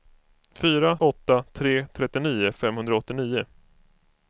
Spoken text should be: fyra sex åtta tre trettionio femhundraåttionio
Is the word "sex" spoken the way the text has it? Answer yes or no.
no